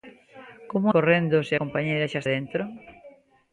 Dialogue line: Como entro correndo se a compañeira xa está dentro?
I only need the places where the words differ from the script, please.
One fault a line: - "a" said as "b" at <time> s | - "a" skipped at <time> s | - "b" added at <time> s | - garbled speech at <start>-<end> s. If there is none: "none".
- "entro" skipped at 0.9 s
- "a" skipped at 1.5 s
- "está" skipped at 2.2 s